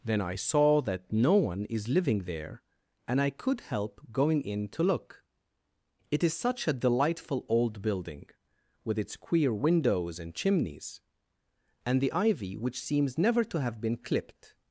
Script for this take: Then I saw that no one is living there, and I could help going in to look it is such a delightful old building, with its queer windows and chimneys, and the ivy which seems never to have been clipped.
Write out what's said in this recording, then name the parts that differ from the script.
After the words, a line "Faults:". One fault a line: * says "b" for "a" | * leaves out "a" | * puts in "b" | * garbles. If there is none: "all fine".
Then I saw that no one is living there, and I could help going in to look it is such a delightful old building, with its queer windows and chimneys, and the ivy which seems never to have been clipped.
Faults:
all fine